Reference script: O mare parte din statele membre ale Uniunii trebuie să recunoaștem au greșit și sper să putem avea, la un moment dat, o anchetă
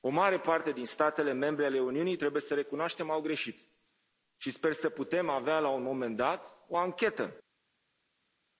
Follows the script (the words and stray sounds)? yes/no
yes